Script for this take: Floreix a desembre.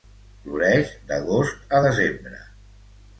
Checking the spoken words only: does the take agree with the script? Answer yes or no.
no